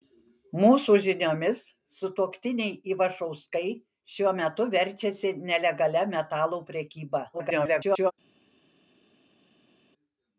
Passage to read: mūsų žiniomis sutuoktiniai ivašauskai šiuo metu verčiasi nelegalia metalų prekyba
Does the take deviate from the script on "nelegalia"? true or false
false